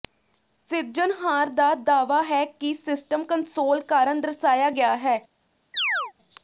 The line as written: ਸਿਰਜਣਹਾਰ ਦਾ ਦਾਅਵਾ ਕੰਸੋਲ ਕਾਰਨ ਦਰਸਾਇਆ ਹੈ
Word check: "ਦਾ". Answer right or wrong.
right